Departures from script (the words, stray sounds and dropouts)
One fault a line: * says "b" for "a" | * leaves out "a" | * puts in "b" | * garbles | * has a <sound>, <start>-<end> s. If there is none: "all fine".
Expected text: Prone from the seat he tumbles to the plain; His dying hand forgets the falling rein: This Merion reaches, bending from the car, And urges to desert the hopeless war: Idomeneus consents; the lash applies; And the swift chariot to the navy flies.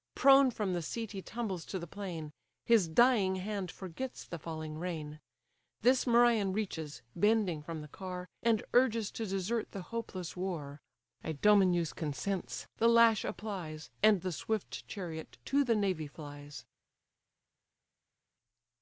all fine